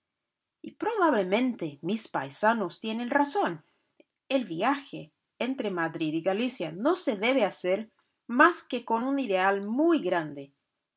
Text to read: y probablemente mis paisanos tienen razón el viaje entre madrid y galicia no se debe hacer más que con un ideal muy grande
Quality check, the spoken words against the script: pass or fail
pass